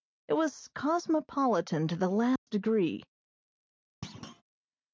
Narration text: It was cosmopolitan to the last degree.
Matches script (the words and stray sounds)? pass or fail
fail